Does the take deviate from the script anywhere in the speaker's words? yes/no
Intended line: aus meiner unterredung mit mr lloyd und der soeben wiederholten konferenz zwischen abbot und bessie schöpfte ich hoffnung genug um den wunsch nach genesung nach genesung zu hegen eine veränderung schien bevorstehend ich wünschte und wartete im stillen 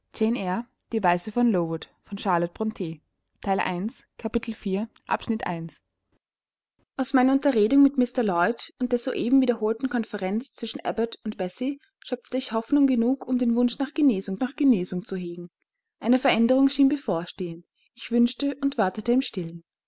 no